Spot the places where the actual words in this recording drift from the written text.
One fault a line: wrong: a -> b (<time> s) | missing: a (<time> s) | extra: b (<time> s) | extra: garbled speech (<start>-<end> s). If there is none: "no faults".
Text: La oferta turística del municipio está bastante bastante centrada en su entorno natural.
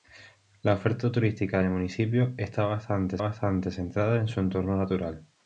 no faults